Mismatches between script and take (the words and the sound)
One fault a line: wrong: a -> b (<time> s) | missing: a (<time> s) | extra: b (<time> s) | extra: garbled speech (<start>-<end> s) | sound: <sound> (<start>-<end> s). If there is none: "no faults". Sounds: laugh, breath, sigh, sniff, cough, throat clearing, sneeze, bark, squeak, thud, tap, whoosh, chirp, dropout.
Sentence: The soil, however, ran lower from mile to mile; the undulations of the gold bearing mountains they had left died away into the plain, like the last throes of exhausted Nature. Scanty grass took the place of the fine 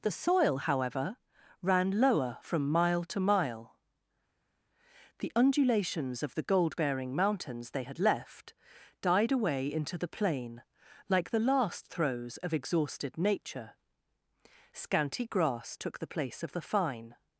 no faults